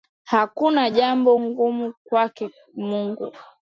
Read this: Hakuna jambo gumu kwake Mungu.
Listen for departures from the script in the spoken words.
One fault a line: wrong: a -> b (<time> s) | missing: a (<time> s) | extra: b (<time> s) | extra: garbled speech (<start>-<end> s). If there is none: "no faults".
no faults